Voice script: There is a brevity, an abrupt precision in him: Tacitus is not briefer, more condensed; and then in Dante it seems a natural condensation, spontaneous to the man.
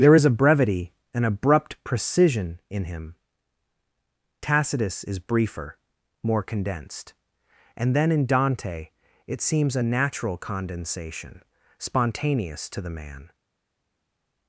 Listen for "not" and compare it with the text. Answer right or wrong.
wrong